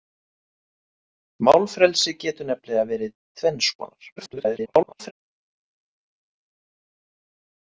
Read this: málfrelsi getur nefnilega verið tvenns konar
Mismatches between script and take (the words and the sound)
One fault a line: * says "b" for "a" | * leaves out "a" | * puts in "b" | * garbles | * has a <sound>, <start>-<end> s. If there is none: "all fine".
* garbles